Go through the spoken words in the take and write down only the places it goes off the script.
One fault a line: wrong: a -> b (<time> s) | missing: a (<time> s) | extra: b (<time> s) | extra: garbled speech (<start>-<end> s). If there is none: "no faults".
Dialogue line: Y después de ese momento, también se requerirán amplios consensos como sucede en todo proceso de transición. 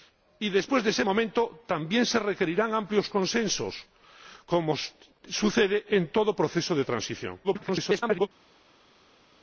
extra: garbled speech (7.4-8.3 s)